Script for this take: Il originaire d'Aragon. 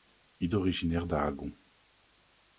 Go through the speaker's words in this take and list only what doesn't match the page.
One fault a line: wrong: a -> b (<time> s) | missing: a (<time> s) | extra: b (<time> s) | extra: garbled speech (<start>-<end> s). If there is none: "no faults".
no faults